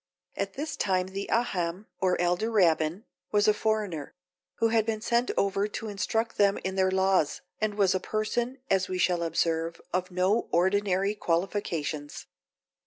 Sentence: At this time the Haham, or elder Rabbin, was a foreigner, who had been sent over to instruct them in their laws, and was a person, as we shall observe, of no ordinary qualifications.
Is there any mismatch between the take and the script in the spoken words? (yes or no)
no